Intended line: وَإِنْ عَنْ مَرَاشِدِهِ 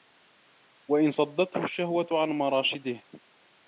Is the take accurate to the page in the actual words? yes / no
no